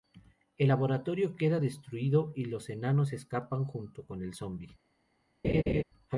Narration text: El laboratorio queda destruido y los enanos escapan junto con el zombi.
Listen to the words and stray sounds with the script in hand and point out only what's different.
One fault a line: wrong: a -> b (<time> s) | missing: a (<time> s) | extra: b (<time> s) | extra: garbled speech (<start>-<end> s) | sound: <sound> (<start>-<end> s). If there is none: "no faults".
sound: laugh (5.4-5.8 s)